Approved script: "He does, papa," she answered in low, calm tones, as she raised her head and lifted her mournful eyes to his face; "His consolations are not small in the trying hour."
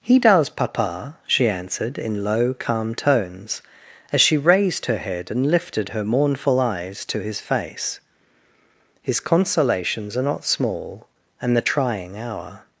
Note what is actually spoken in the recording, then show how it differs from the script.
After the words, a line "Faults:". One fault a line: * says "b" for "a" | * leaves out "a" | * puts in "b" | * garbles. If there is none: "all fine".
"He does, papa," she answered in low, calm tones, as she raised her head and lifted her mournful eyes to his face; "His consolations are not small and the trying hour."
Faults:
* says "and" for "in"